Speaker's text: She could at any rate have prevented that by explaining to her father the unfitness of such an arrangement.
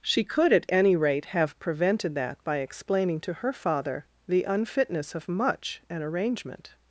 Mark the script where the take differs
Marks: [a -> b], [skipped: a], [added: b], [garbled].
She could at any rate have prevented that by explaining to her father the unfitness of [such -> much] an arrangement.